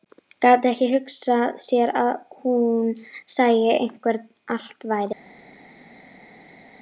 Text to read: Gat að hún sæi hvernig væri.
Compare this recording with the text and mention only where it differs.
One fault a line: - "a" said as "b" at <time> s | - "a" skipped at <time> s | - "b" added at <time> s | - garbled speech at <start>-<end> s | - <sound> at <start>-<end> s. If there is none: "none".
- "ekki hugsað sér" added at 0.7 s
- "allt" added at 4.6 s